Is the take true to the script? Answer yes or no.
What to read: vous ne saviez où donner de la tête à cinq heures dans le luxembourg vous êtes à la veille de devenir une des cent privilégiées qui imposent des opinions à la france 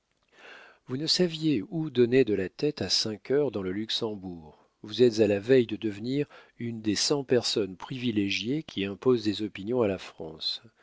no